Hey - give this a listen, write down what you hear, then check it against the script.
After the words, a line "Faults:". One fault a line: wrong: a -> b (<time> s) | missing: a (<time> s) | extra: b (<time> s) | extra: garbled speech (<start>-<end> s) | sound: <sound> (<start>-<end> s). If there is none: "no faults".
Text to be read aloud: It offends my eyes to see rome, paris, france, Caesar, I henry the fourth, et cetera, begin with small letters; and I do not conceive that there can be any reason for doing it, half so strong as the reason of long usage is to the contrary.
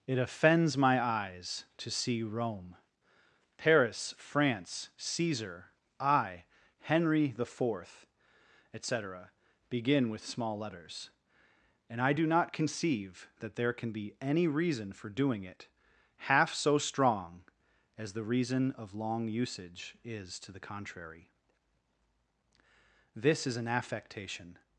It offends my eyes to see rome, paris, france, Caesar, I henry the fourth, et cetera, begin with small letters; and I do not conceive that there can be any reason for doing it, half so strong as the reason of long usage is to the contrary. This is an affectation
Faults:
extra: This is an affectation (23.1 s)